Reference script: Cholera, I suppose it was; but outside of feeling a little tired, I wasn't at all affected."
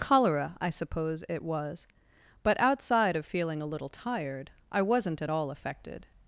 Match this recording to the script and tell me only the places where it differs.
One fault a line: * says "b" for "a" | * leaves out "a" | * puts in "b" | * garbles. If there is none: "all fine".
all fine